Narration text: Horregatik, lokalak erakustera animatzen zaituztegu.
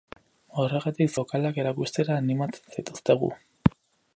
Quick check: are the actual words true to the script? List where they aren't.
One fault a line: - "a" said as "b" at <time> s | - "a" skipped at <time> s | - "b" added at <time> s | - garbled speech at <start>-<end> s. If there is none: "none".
none